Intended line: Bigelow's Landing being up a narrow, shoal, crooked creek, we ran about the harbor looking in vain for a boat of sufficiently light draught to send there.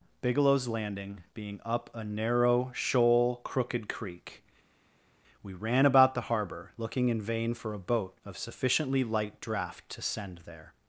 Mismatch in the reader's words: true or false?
false